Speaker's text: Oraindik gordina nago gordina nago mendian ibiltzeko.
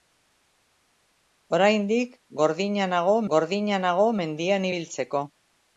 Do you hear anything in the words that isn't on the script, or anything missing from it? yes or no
no